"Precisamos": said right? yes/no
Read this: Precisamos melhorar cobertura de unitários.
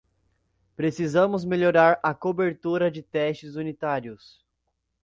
yes